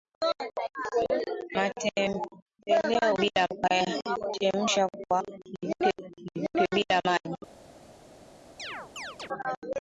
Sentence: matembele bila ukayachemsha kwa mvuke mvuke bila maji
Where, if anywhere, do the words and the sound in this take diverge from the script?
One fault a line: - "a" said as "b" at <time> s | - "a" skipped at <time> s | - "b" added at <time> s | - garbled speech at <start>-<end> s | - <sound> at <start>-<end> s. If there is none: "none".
- chirp at 8.6-9.3 s